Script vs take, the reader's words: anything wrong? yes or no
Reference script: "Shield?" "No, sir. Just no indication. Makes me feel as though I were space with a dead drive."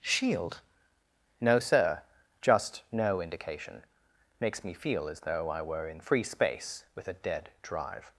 yes